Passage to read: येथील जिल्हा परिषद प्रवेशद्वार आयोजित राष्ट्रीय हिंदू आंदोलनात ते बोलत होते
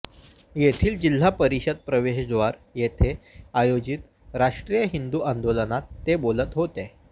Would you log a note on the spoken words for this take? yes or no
yes